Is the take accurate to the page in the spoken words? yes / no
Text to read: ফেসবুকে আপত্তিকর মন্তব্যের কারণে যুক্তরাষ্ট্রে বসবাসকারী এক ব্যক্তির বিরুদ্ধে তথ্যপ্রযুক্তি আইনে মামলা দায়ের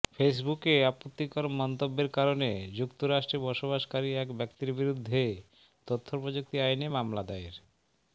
yes